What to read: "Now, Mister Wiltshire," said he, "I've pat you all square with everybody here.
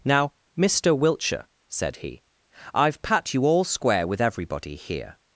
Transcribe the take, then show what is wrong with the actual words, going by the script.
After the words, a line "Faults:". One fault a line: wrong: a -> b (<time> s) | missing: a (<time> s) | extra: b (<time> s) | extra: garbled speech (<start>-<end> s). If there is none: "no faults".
"Now, Mister Wiltshire," said he, "I've pat you all square with everybody here.
Faults:
no faults